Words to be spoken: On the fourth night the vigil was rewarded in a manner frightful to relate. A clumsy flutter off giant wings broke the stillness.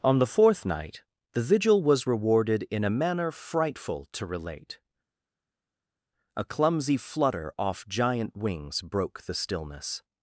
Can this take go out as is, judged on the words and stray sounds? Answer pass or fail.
pass